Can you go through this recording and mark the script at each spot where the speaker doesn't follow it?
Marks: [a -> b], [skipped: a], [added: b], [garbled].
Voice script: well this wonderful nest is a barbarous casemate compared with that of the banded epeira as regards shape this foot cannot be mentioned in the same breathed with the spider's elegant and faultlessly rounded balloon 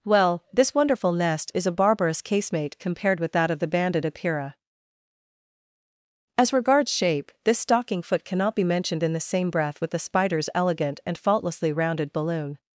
well this wonderful nest is a barbarous casemate compared with that of the banded epeira as regards shape this [added: stocking] foot cannot be mentioned in the same [breathed -> breath] with the spider's elegant and faultlessly rounded balloon